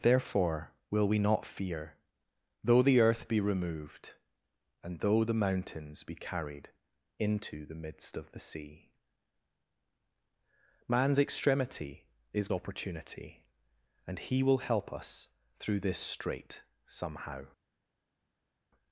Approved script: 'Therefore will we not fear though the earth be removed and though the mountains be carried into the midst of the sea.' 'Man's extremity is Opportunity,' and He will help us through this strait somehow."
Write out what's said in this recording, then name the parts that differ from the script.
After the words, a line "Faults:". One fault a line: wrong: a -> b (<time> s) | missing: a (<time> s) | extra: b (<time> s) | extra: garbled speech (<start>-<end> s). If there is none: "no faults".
'Therefore will we not fear though the earth be removed and though the mountains be carried into the midst of the sea.' 'Man's extremity is Opportunity,' and He will help us through this strait somehow."
Faults:
no faults